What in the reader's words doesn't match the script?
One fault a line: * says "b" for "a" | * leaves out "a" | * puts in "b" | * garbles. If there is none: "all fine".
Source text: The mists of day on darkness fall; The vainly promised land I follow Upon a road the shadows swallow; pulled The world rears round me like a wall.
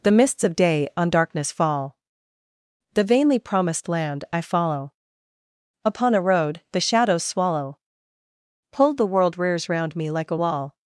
all fine